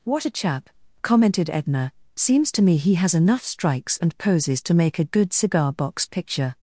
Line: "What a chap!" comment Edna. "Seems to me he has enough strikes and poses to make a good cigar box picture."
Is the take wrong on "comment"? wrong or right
wrong